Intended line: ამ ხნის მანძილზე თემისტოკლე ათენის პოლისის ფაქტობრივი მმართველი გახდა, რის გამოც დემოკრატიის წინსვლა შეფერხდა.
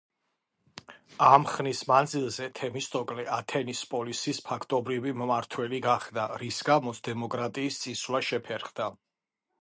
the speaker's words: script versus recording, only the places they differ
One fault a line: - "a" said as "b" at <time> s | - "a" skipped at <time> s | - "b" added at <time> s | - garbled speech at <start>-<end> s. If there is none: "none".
none